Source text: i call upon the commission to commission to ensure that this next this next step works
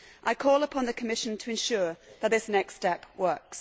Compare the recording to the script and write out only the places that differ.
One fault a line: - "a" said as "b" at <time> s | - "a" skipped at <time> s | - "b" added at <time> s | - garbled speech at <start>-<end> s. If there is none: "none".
- "commission to" skipped at 1.5 s
- "this next" skipped at 2.8 s